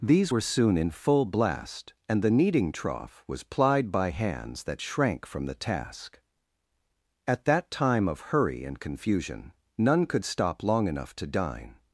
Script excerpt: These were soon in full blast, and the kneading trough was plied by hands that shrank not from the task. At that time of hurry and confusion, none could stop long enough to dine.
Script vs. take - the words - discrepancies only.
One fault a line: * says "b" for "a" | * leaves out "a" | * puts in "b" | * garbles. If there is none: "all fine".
* leaves out "not"